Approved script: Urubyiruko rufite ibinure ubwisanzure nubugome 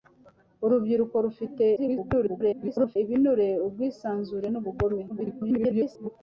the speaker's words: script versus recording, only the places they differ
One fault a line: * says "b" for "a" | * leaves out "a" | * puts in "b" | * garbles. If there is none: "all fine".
* garbles
* garbles